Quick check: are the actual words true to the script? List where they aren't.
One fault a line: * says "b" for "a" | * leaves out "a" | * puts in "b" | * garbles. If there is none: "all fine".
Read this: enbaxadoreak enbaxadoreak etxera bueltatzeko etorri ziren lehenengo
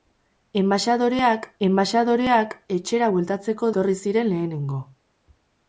all fine